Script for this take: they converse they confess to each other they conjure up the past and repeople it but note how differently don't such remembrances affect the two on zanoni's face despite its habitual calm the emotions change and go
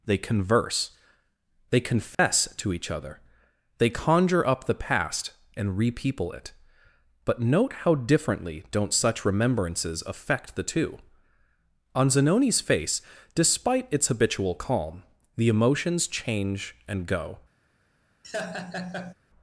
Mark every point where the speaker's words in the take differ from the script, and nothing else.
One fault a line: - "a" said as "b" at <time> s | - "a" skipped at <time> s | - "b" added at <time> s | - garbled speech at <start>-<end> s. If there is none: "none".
none